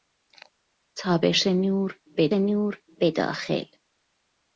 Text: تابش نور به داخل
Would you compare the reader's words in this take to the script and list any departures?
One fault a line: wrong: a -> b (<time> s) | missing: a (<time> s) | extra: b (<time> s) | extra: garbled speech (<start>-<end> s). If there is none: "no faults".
extra: نور به (2.3 s)